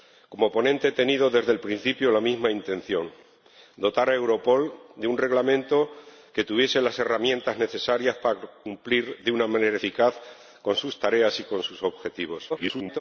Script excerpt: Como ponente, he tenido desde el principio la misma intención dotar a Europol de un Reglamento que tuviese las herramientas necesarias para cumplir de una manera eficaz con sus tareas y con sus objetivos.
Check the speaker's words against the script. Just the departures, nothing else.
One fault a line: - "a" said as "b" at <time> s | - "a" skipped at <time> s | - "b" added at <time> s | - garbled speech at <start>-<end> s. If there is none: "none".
- garbled speech at 12.5-13.0 s